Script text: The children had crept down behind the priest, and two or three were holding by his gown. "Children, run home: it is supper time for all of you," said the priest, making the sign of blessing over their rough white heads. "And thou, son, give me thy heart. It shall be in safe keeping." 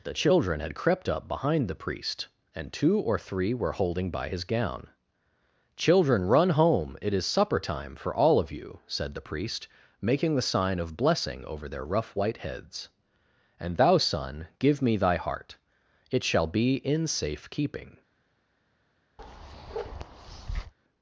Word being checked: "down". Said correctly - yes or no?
no